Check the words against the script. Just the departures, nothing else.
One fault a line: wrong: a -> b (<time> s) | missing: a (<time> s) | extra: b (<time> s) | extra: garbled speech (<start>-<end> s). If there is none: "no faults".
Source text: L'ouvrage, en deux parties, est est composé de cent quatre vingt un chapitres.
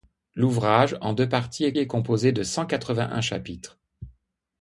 no faults